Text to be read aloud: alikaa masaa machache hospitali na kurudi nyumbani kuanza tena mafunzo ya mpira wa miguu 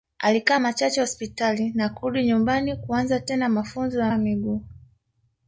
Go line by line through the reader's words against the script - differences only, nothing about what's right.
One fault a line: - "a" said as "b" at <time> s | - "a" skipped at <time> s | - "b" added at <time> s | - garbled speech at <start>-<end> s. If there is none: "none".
- "masaa" skipped at 0.6 s
- "mpira" skipped at 4.1 s